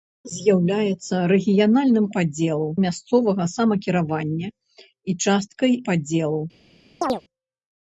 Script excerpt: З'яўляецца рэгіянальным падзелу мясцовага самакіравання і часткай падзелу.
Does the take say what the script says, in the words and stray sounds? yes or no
no